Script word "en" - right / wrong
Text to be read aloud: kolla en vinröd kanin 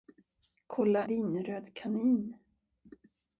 wrong